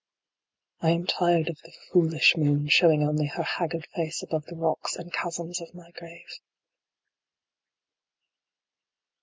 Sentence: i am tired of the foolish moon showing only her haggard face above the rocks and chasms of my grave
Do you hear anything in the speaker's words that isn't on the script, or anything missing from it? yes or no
no